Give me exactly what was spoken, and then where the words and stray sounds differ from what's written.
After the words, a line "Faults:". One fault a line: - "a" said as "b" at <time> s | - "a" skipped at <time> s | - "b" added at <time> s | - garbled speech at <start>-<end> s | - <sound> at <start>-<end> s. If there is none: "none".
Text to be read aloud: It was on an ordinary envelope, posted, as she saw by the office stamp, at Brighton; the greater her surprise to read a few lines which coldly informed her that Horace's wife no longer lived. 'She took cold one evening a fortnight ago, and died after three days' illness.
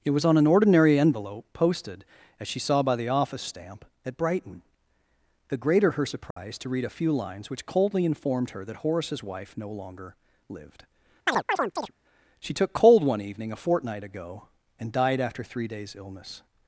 It was on an ordinary envelope, posted, as she saw by the office stamp, at Brighton; the greater her surprise to read a few lines which coldly informed her that Horace's wife no longer lived. 'She took cold one evening a fortnight ago, and died after three days' illness.
Faults:
- dropout at 6.3-6.4 s
- chirp at 11.3-11.9 s